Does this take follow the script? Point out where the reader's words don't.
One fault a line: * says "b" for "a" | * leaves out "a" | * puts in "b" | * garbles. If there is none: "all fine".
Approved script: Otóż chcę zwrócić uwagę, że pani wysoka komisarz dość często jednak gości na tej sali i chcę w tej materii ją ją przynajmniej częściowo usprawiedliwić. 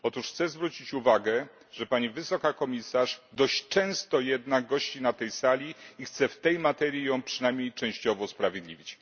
* leaves out "ją"